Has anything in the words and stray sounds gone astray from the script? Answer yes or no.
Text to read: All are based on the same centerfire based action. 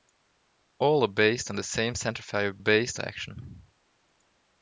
no